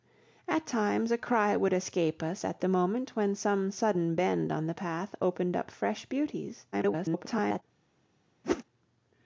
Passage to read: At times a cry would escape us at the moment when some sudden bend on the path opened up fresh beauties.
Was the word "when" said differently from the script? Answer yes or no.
no